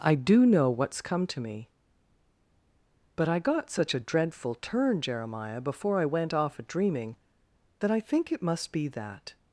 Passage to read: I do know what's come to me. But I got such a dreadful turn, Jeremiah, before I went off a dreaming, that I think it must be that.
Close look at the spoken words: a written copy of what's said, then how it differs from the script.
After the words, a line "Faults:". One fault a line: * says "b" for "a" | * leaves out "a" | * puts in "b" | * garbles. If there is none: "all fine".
I do know what's come to me. But I got such a dreadful turn, Jeremiah, before I went off a dreaming, that I think it must be that.
Faults:
all fine